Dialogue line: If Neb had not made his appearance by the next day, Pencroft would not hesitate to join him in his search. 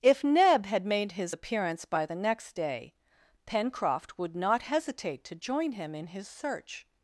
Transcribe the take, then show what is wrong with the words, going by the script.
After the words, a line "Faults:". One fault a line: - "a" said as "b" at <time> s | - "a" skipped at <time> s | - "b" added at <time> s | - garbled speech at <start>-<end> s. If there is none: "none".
If Neb had made his appearance by the next day, Pencroft would not hesitate to join him in his search.
Faults:
- "not" skipped at 0.8 s